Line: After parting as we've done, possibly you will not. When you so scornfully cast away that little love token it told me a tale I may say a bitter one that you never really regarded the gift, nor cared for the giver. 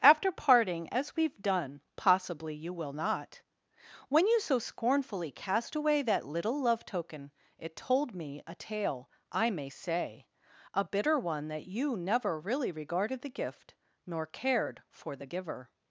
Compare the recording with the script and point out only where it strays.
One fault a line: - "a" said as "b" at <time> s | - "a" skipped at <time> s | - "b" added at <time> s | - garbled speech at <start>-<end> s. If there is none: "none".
none